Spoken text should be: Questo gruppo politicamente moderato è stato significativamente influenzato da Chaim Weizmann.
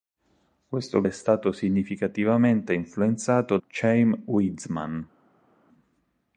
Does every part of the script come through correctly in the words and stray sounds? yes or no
no